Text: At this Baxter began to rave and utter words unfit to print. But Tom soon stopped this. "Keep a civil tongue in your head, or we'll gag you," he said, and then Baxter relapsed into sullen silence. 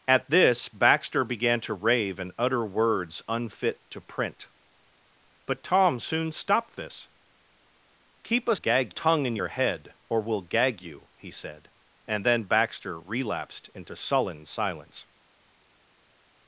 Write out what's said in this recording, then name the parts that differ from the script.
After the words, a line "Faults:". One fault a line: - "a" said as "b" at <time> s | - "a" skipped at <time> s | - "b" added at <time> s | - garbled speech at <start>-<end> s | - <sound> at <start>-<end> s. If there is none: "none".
At this Baxter began to rave and utter words unfit to print. But Tom soon stopped this. "Keep a gag tongue in your head, or we'll gag you," he said, and then Baxter relapsed into sullen silence.
Faults:
- "civil" said as "gag" at 8.5 s